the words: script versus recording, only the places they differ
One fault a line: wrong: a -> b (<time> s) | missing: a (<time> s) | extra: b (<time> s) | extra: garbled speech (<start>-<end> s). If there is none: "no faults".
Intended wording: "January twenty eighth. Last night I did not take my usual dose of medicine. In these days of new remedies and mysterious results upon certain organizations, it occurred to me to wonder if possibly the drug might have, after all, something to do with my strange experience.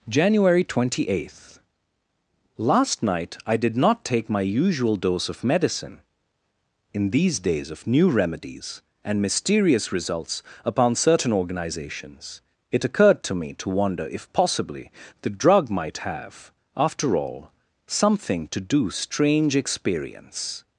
missing: with my (18.9 s)